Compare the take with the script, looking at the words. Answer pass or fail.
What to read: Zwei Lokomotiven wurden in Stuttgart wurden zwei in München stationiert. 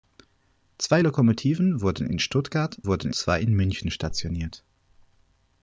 pass